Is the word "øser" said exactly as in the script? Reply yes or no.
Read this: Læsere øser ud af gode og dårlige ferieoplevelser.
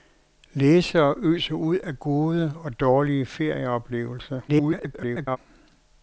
yes